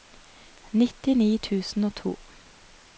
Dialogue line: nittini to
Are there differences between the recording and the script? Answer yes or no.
yes